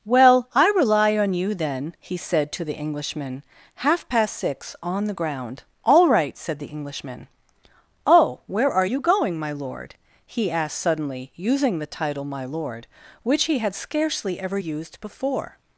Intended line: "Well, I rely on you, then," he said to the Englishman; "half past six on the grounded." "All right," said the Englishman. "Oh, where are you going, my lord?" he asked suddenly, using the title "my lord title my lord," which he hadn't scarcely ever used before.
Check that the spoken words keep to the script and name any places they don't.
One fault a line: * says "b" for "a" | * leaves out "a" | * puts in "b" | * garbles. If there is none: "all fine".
* says "ground" for "grounded"
* leaves out "title my lord"
* says "had" for "hadn't"